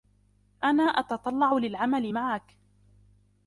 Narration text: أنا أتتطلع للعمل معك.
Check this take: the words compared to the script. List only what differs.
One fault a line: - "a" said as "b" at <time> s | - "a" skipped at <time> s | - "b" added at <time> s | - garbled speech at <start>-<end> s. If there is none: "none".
none